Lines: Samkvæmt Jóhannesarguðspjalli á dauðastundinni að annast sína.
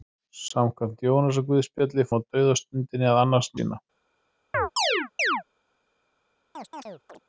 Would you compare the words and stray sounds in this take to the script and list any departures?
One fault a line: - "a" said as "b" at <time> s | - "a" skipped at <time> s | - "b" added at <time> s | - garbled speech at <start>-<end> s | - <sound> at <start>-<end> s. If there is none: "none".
- chirp at 4.5-5.4 s
- chirp at 6.5-7.2 s